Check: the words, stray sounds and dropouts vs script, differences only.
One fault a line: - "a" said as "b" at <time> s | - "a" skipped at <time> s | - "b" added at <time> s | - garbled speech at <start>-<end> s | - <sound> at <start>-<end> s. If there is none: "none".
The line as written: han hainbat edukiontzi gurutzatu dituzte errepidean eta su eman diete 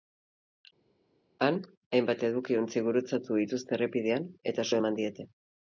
none